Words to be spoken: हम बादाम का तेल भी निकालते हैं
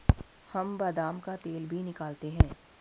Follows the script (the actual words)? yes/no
yes